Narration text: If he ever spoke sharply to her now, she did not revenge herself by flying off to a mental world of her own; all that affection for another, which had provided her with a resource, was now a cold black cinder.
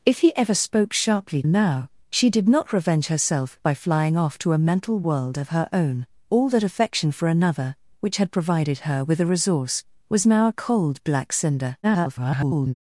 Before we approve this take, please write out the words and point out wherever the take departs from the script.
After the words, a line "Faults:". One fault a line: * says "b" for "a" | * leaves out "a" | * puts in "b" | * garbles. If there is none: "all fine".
If he ever spoke sharply now, she did not revenge herself by flying off to a mental world of her own; all that affection for another, which had provided her with a resource, was now a cold black cinder. [garbled]
Faults:
* leaves out "to her"
* garbles